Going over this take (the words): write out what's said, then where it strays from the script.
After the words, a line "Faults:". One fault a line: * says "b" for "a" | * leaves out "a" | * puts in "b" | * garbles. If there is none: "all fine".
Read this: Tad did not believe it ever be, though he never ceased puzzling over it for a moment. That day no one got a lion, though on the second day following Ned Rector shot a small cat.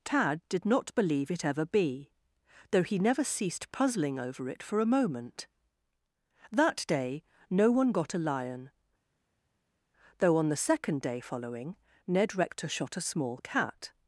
Tad did not believe it ever be, though he never ceased puzzling over it for a moment. That day no one got a lion, though on the second day following Ned Rector shot a small cat.
Faults:
all fine